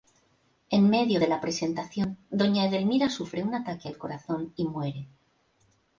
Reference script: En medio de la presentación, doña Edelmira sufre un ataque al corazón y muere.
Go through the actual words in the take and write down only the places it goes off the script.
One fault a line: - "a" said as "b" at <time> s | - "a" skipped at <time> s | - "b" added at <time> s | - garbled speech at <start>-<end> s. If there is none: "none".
none